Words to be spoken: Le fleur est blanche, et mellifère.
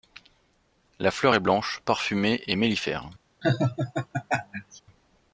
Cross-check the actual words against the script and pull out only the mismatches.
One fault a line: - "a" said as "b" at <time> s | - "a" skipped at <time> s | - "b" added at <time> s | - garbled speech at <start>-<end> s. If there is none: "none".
- "Le" said as "La" at 1.0 s
- "parfumée" added at 1.9 s